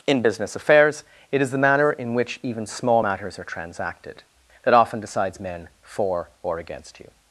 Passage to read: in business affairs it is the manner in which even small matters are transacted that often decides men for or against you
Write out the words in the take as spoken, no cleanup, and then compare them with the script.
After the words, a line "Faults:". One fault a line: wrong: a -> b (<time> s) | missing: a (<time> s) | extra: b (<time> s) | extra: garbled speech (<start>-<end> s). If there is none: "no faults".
in business affairs it is the manner in which even small matters are transacted that often decides men for or against you
Faults:
no faults